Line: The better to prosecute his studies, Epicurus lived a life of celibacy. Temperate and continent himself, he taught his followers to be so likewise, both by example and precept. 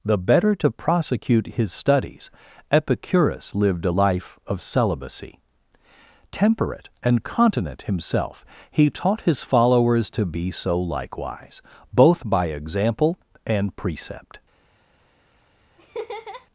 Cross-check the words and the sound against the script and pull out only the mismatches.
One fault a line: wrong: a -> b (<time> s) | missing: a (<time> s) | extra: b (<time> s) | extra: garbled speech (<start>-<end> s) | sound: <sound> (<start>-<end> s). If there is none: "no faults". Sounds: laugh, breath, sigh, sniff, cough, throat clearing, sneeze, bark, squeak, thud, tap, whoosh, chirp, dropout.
sound: laugh (15.8-16.5 s)